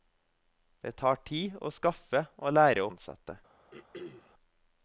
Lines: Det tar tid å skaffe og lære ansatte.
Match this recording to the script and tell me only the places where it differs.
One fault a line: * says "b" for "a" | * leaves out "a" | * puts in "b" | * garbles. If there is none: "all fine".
all fine